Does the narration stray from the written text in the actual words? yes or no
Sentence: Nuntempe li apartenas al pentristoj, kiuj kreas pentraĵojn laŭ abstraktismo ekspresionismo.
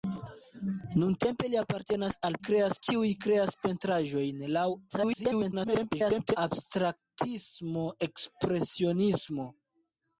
yes